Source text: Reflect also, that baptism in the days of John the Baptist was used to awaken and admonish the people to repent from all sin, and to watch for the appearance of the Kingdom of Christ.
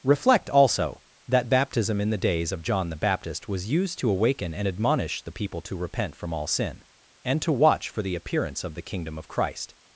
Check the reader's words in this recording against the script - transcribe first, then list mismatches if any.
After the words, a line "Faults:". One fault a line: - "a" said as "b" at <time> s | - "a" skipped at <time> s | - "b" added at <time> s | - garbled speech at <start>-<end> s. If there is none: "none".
Reflect also, that baptism in the days of John the Baptist was used to awaken and admonish the people to repent from all sin, and to watch for the appearance of the Kingdom of Christ.
Faults:
none